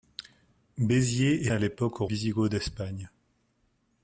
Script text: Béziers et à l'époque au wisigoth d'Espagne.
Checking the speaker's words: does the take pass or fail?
pass